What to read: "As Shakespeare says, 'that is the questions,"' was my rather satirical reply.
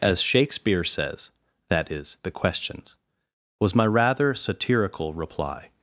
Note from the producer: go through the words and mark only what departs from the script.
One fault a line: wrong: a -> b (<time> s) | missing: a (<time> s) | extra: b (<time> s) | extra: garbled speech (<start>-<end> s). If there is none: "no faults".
no faults